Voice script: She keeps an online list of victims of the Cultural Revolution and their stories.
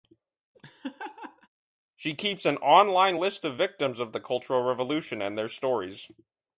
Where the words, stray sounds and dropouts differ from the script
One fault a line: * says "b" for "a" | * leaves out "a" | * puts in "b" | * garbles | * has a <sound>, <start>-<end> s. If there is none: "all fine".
* has a laugh, 0.5-1.5 s